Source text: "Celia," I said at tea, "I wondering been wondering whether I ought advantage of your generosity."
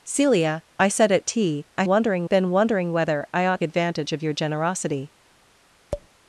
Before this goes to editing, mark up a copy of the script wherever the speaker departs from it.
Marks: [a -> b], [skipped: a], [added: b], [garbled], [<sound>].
"Celia," I said at tea, "I wondering been wondering whether I ought advantage of your generosity." [tap]